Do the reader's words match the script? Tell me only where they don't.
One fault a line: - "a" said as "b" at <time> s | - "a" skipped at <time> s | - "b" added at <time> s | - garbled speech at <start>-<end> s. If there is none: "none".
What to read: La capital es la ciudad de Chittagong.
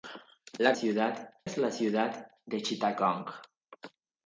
- "capital" said as "ciudad" at 0.7 s